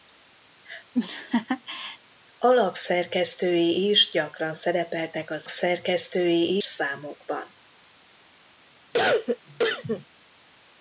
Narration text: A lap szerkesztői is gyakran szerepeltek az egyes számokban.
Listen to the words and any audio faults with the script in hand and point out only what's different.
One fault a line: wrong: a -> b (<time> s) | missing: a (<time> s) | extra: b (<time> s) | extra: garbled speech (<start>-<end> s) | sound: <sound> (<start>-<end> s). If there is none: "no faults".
sound: laugh (0.9-2.0 s)
wrong: egyes -> szerkesztői (5.5 s)
sound: cough (8.9-10.1 s)